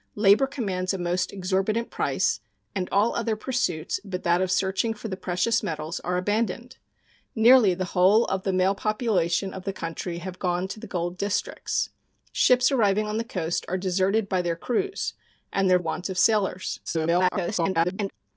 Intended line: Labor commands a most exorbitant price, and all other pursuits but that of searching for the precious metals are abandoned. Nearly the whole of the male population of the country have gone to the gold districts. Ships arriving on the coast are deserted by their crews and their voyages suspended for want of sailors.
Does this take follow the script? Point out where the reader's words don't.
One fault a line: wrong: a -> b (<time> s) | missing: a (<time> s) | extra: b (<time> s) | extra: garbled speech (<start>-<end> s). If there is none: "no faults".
missing: voyages suspended for (15.8 s)
extra: garbled speech (16.9-18.1 s)